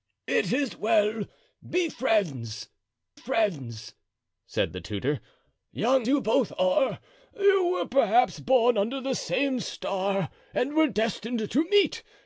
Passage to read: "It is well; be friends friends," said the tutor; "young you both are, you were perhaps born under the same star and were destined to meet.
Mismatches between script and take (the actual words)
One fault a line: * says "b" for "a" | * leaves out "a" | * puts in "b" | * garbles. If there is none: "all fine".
all fine